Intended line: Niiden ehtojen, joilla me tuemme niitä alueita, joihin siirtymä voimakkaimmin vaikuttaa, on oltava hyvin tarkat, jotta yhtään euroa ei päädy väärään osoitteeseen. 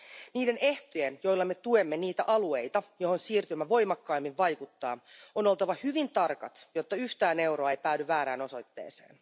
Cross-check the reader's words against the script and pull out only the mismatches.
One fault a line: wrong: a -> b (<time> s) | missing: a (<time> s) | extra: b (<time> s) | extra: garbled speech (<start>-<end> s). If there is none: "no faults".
no faults